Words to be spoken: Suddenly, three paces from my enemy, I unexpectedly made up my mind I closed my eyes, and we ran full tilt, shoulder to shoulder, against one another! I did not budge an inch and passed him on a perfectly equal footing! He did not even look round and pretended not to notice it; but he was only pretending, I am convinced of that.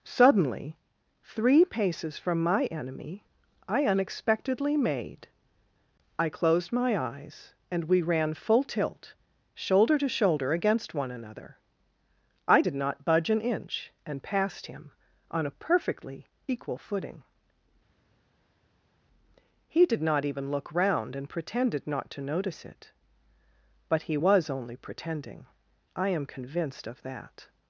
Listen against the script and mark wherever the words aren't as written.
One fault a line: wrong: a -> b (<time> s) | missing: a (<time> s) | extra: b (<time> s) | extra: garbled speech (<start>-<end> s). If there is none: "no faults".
missing: up my mind (5.3 s)